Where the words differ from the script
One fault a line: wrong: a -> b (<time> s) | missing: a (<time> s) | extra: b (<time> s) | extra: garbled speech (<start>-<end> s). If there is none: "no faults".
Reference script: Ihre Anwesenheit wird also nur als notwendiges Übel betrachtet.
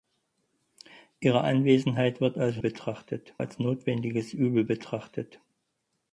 wrong: nur -> betrachtet (2.6 s)